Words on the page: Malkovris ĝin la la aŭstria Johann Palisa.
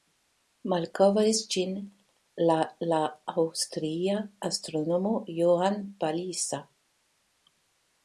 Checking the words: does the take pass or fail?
fail